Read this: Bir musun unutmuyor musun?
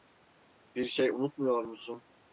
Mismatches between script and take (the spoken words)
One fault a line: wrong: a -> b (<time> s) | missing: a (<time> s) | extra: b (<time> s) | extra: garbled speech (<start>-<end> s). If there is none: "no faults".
wrong: musun -> şey (0.8 s)